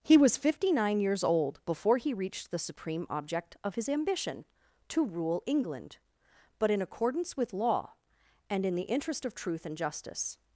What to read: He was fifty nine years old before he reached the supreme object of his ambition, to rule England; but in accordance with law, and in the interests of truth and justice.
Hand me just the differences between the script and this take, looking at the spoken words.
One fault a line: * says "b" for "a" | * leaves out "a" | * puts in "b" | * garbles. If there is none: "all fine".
* says "interest" for "interests"